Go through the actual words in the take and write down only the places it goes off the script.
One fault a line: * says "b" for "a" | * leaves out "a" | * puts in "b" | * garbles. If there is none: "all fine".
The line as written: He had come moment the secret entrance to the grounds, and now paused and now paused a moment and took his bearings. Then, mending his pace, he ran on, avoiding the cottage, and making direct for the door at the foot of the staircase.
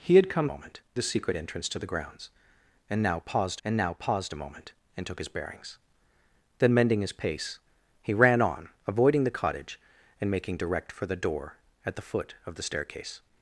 all fine